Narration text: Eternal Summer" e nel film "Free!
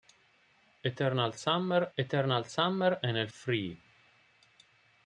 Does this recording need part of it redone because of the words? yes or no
yes